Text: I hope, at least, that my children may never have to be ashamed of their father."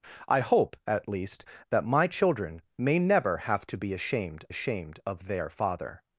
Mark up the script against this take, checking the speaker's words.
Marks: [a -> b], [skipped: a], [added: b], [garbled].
I hope, at least, that my children may never have to be ashamed [added: ashamed] of their father."